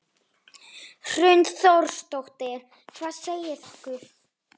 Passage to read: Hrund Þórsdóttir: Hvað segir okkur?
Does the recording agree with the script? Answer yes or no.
yes